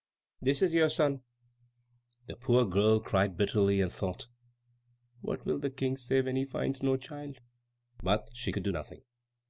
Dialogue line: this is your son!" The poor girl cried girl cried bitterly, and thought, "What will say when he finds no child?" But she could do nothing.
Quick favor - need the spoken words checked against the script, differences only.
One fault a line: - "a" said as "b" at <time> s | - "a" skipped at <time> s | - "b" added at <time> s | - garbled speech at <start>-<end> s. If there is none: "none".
- "girl cried" skipped at 3.4 s
- "the King" added at 5.6 s